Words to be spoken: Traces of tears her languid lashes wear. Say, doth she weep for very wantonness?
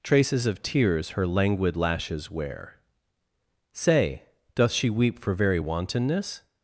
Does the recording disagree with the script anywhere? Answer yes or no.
no